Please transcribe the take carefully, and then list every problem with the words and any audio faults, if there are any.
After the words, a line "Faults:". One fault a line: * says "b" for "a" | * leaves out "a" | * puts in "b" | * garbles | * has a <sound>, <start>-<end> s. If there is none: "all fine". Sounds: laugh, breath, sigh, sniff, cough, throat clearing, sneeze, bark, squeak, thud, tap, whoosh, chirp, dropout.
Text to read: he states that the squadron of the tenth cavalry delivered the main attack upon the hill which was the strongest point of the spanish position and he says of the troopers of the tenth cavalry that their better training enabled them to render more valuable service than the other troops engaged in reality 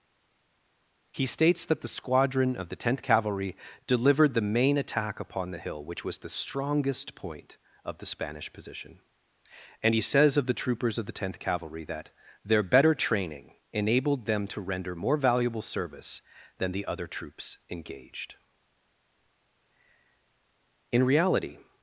he states that the squadron of the tenth cavalry delivered the main attack upon the hill which was the strongest point of the spanish position and he says of the troopers of the tenth cavalry that their better training enabled them to render more valuable service than the other troops engaged in reality
Faults:
all fine